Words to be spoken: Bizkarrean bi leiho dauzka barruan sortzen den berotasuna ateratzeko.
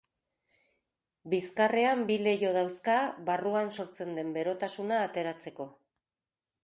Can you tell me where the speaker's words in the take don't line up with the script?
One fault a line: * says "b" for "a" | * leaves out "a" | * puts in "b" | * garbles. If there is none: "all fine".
all fine